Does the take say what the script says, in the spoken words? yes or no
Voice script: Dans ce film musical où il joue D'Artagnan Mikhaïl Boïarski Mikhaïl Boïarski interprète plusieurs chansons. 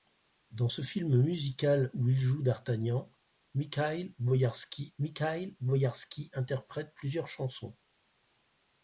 yes